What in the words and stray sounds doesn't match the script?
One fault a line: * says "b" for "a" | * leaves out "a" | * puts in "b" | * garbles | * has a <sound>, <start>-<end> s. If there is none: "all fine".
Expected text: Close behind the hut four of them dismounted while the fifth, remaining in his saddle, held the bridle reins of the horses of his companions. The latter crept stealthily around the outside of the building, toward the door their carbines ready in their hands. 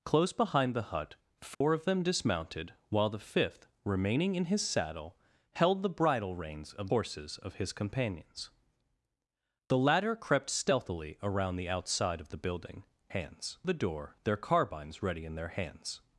* has a dropout, 1.5-1.6 s
* leaves out "the"
* says "hands" for "toward"